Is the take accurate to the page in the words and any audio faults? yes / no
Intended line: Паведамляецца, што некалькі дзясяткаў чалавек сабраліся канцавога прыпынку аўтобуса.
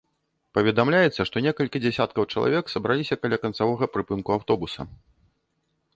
no